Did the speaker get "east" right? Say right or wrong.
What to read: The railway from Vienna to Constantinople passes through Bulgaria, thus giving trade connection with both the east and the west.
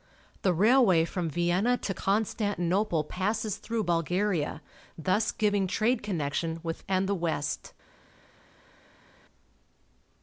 wrong